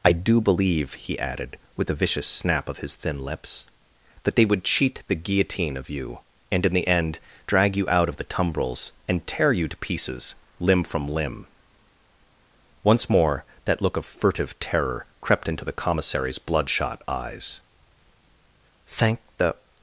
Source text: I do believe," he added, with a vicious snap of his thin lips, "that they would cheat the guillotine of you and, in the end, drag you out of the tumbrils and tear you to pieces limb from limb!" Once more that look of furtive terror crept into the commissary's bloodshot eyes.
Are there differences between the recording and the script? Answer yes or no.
yes